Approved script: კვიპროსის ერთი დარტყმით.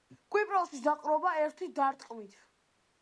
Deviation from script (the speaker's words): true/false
true